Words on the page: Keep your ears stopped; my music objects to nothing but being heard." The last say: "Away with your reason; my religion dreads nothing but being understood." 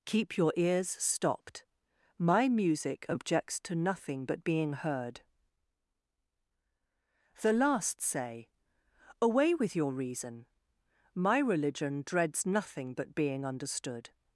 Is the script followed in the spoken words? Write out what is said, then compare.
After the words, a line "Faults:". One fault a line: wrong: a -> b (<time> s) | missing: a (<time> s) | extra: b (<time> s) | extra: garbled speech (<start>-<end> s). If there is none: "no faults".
Keep your ears stopped; my music objects to nothing but being heard." The last say: "Away with your reason; my religion dreads nothing but being understood."
Faults:
no faults